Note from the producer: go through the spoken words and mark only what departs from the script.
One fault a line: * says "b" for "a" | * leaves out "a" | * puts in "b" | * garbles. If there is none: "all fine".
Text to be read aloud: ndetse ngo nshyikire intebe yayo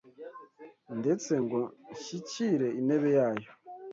all fine